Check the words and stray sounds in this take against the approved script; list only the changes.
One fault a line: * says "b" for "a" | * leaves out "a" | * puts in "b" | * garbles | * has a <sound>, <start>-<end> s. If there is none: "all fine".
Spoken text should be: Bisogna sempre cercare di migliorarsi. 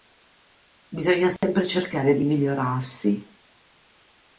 * has a dropout, 1.4-1.4 s